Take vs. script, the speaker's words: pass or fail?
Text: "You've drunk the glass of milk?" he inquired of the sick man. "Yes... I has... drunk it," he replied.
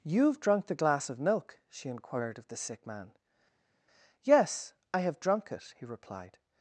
fail